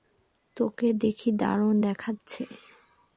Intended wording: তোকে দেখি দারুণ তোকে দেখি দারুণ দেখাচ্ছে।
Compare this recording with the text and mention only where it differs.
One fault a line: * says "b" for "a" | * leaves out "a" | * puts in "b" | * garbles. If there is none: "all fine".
* leaves out "তোকে দেখি দারুণ"